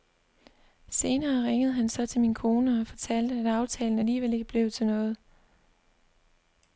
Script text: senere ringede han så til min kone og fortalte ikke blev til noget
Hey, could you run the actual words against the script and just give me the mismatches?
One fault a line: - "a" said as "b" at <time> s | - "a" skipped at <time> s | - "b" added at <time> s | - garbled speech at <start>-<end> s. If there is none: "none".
- "at aftalen alligevel" added at 3.4 s